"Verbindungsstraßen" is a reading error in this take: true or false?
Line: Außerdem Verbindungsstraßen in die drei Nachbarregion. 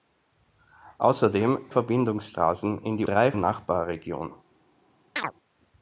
false